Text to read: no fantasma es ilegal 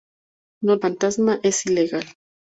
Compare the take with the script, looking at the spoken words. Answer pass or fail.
pass